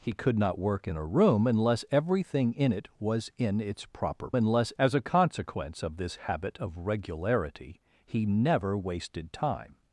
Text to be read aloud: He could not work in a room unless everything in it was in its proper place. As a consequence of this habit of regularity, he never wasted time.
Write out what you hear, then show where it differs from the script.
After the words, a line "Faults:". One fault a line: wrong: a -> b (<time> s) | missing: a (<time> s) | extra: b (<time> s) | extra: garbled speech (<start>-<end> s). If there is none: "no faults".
He could not work in a room unless everything in it was in its proper unless. As a consequence of this habit of regularity, he never wasted time.
Faults:
wrong: place -> unless (4.3 s)